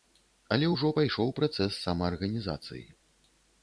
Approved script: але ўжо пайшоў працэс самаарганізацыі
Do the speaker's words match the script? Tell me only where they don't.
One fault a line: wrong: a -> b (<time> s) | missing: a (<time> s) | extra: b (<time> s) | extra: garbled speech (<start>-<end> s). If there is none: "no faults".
no faults